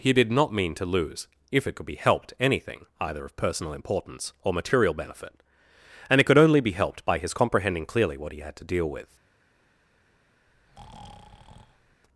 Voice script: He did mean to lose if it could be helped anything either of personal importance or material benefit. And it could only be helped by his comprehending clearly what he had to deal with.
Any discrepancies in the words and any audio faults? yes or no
yes